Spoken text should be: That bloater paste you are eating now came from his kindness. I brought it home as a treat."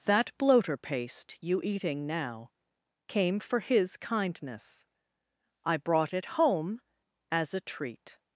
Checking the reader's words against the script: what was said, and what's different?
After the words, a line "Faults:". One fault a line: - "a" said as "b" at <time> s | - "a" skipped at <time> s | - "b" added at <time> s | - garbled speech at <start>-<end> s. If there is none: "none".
That bloater paste you eating now came for his kindness. I brought it home as a treat."
Faults:
- "are" skipped at 1.6 s
- "from" said as "for" at 3.4 s